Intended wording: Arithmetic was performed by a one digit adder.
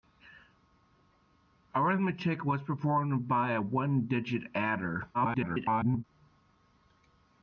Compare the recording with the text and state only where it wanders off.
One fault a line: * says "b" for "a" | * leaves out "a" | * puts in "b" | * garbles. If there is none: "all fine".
* garbles